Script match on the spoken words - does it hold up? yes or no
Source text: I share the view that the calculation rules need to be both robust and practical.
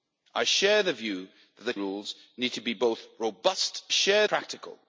no